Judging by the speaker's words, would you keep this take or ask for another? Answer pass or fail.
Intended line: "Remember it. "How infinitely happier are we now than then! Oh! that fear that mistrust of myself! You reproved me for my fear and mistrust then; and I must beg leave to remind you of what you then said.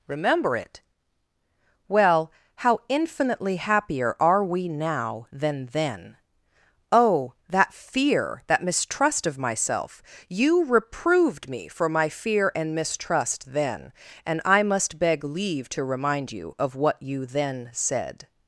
fail